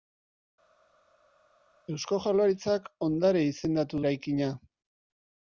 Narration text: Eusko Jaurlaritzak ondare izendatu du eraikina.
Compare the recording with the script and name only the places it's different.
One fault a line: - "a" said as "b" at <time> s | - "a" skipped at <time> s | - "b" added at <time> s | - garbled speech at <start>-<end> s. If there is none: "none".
- "du" skipped at 4.0 s